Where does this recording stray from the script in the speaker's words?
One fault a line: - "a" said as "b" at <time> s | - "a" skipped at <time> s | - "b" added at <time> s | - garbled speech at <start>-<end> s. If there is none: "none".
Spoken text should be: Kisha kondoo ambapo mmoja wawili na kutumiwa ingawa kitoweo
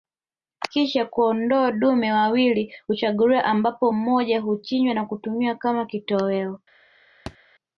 - "dume wawili huchaguliwa" added at 1.7 s
- "wawili" said as "huchinjwa" at 4.4 s
- "ingawa" said as "kama" at 5.5 s